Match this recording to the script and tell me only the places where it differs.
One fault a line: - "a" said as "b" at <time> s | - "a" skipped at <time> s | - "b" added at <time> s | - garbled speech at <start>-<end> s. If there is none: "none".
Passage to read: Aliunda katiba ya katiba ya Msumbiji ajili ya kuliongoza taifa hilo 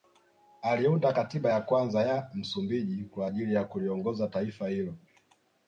- "katiba" said as "kwanza" at 1.6 s
- "kwa" added at 3.0 s